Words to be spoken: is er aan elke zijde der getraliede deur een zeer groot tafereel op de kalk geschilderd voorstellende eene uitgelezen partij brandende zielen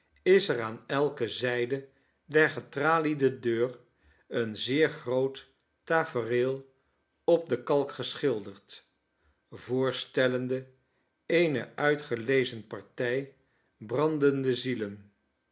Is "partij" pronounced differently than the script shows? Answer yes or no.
no